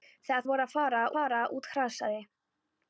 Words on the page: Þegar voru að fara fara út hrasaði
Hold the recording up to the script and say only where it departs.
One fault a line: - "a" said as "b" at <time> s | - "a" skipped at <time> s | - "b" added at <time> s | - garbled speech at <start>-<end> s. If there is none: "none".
none